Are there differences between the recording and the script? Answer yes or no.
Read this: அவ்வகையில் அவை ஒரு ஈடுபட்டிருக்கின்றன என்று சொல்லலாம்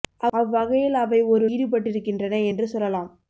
no